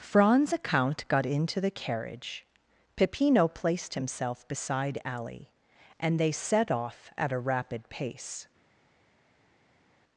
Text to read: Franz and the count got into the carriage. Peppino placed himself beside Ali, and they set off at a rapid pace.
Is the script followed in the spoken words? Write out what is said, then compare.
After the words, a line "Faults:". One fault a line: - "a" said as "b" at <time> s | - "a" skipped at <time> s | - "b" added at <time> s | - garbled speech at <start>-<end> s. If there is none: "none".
Franz the count got into the carriage. Peppino placed himself beside Ali, and they set off at a rapid pace.
Faults:
- "and" skipped at 0.5 s